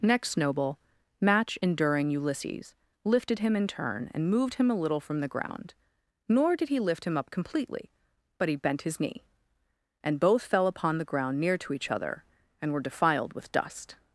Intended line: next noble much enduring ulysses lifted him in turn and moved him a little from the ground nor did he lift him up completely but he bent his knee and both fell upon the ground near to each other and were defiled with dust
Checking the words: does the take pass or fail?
fail